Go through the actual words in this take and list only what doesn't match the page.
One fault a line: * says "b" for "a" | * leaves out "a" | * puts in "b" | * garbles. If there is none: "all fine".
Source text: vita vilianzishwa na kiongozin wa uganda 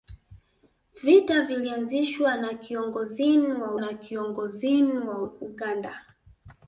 * puts in "na kiongozin wa"